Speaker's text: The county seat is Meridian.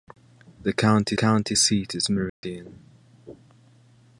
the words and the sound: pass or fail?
fail